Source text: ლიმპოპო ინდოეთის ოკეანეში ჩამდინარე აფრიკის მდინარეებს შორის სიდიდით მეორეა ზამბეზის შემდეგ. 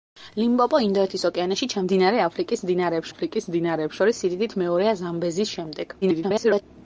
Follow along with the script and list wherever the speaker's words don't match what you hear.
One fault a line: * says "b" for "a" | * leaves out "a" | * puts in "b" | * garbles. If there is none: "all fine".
* puts in "აფრიკის მდინარეებს"
* garbles